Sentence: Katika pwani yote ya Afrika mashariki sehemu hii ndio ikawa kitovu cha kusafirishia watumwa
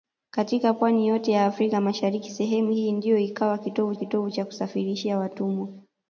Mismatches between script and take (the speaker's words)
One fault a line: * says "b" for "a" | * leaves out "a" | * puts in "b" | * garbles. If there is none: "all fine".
* puts in "kitovu"